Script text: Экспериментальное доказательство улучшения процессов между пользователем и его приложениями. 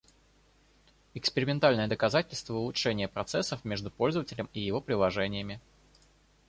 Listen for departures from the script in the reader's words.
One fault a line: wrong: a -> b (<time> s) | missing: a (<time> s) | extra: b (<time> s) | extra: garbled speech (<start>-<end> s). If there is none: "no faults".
no faults